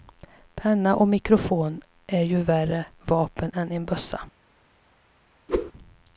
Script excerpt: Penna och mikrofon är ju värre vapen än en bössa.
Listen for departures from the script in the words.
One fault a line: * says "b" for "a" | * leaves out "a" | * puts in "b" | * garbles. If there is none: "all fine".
all fine